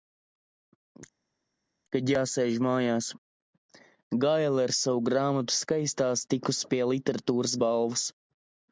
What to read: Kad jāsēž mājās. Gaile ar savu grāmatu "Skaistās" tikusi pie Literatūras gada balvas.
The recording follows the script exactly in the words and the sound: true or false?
false